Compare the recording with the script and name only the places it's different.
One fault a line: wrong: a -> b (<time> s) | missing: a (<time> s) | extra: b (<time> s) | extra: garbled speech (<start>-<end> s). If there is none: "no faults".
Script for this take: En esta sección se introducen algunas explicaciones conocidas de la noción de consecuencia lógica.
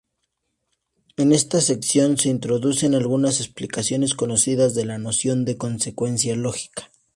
no faults